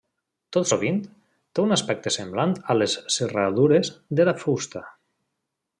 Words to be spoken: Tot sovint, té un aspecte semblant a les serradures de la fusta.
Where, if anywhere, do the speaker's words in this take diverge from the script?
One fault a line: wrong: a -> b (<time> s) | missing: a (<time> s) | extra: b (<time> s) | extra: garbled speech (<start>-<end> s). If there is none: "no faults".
no faults